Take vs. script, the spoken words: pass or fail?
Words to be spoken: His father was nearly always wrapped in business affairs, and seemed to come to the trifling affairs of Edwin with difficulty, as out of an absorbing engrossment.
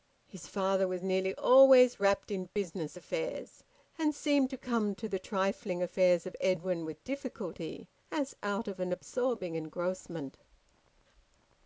pass